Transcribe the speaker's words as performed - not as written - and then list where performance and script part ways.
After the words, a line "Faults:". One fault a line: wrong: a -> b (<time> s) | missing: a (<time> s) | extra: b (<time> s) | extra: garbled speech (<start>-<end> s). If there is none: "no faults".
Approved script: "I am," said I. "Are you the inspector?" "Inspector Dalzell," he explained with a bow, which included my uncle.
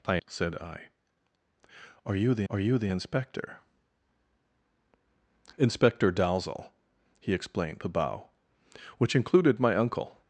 "I," said I. "Are you the are you the inspector?" "Inspector Dalzell," he explained a bow, which included my uncle.
Faults:
missing: am (0.2 s)
extra: are you the (2.5 s)
missing: with (7.8 s)